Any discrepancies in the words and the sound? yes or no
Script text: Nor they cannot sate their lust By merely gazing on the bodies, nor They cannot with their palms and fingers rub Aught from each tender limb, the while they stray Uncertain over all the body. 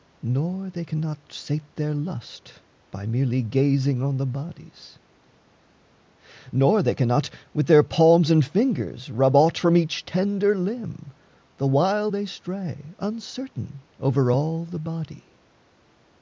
no